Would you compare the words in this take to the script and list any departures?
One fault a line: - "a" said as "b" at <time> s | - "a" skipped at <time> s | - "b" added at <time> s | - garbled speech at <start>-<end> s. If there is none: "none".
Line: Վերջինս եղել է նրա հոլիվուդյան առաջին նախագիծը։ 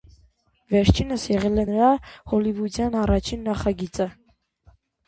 none